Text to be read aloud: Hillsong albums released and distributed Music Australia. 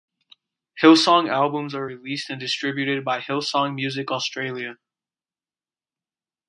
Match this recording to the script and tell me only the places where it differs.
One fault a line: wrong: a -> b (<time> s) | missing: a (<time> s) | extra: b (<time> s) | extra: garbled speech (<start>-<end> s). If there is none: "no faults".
extra: are (1.8 s)
extra: by Hillsong (3.0 s)